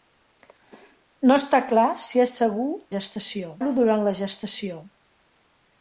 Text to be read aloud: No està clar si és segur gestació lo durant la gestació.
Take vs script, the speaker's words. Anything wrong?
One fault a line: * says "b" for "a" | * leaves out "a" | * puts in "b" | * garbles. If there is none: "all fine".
all fine